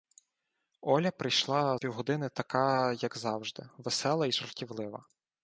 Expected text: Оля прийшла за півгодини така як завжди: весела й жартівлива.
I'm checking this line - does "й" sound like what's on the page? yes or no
yes